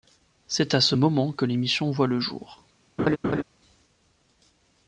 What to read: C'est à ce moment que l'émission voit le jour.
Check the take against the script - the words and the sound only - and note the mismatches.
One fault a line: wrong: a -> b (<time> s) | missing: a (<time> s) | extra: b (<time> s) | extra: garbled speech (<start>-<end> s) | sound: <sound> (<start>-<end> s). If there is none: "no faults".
sound: laugh (3.0-3.4 s)